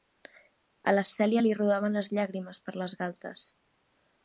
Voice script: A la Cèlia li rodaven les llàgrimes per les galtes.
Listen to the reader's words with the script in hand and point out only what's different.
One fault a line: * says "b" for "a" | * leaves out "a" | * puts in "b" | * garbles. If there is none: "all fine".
all fine